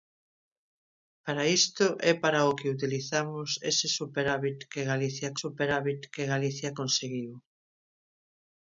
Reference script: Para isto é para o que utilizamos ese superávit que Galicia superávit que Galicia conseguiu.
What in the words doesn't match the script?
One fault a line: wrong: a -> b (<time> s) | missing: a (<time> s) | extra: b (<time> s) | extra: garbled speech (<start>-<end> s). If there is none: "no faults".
no faults